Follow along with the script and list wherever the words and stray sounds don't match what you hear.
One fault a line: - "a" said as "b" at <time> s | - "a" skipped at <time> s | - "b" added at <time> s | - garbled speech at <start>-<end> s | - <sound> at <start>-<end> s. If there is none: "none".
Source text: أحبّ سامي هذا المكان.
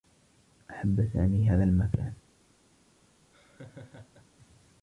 - laugh at 3.3-4.3 s